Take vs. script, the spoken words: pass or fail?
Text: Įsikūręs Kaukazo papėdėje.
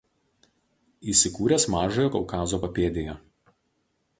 fail